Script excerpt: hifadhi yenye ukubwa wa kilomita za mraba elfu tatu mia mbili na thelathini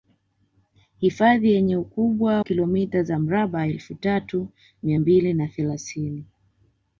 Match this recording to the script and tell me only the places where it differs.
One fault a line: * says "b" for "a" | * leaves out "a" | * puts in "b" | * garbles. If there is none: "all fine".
* leaves out "wa"